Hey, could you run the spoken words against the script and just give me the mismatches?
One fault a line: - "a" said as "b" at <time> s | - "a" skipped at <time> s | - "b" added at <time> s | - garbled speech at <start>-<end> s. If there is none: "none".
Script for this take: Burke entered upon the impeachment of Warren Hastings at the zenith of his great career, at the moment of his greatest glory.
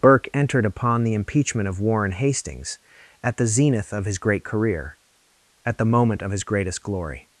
none